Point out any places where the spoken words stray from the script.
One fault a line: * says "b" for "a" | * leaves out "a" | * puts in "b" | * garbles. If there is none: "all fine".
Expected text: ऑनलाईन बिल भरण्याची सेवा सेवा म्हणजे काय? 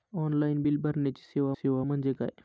all fine